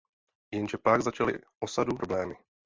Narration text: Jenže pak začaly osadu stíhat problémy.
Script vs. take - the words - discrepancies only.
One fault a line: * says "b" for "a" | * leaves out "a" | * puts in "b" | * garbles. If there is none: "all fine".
* leaves out "stíhat"